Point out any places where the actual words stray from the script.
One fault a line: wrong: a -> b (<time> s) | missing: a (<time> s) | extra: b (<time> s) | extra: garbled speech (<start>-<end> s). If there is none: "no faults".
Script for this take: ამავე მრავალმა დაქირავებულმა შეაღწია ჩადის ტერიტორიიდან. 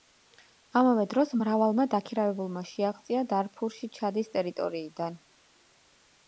extra: დროს (1.1 s)
extra: დარფურში (3.3 s)